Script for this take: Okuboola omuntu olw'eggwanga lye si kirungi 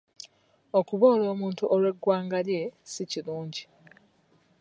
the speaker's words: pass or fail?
pass